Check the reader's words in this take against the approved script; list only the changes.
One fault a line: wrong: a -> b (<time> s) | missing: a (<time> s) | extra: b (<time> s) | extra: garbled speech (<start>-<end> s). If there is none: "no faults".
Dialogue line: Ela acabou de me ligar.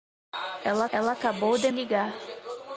extra: ela (0.9 s)
missing: me (1.7 s)